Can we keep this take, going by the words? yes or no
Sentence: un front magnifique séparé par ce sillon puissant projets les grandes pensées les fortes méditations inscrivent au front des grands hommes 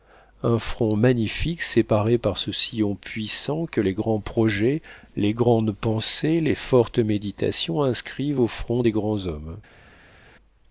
no